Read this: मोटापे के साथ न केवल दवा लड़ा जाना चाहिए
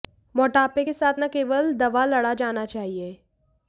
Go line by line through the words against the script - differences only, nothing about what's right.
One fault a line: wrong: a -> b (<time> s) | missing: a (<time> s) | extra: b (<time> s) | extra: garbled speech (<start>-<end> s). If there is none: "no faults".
no faults